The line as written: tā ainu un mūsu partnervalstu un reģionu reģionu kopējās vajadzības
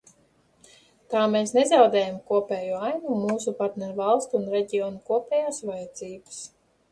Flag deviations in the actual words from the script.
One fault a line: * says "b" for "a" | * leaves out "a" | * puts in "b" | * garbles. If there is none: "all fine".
* puts in "mēs nezaudējam kopējo"
* leaves out "reģionu"